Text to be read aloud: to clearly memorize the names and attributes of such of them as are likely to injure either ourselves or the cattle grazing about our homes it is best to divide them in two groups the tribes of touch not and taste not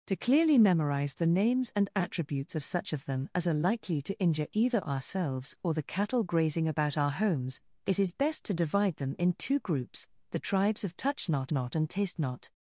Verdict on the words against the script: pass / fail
fail